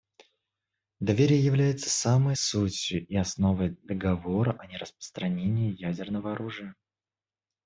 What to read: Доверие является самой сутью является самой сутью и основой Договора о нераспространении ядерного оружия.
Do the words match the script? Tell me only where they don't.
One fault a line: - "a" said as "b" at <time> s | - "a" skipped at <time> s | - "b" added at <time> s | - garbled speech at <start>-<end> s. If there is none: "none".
- "является самой сутью" skipped at 3.0 s